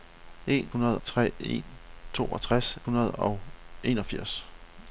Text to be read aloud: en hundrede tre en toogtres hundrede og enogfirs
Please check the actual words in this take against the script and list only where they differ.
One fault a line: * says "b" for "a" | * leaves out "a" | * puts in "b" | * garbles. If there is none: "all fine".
all fine